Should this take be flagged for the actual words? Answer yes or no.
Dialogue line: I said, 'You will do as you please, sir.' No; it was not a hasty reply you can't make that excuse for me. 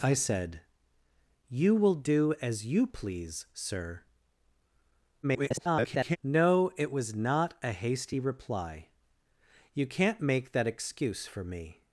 yes